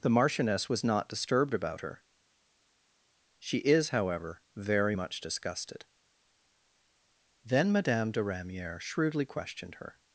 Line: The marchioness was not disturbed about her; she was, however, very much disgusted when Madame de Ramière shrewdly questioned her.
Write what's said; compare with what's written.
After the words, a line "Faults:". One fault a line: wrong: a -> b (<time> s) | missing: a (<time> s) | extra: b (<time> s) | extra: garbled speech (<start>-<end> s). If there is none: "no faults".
The marchioness was not disturbed about her; she is, however, very much disgusted then Madame de Ramière shrewdly questioned her.
Faults:
wrong: was -> is (3.6 s)
wrong: when -> then (7.5 s)